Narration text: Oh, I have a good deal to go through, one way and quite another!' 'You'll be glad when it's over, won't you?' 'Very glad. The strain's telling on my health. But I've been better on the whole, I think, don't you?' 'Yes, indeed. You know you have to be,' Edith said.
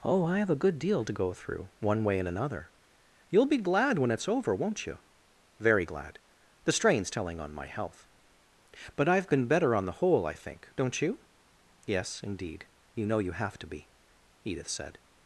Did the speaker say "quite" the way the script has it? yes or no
no